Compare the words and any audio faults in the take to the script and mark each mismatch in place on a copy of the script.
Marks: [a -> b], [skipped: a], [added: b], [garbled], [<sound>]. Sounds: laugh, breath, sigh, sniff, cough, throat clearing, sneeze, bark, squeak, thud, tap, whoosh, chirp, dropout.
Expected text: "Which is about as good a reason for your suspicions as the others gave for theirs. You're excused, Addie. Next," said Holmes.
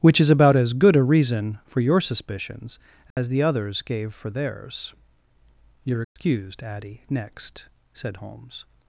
"Which is about as good a reason for your suspicions as [dropout] the others gave for theirs. You're excused, [dropout] Addie. Next," said Holmes.